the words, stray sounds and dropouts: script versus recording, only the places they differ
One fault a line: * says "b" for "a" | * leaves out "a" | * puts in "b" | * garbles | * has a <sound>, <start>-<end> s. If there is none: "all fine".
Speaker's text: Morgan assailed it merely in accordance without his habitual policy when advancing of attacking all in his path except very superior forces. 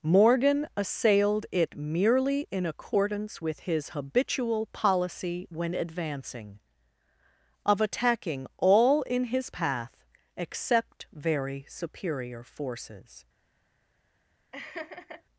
* says "with" for "without"
* has a laugh, 14.5-15.2 s